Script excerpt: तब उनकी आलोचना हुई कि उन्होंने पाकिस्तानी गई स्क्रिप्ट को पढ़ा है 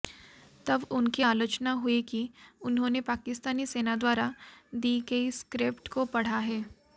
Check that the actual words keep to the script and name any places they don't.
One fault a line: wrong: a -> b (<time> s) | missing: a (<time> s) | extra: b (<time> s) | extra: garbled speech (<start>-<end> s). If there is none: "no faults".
extra: सेना द्वारा दी (3.7 s)